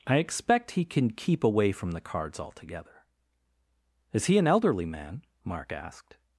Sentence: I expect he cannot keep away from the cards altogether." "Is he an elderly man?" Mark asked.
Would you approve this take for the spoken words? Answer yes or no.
no